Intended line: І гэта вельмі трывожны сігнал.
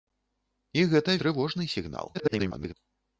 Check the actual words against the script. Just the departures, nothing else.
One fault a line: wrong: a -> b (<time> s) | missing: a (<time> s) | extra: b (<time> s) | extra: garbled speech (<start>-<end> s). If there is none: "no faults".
missing: вельмі (1.2 s)
extra: garbled speech (2.1-2.7 s)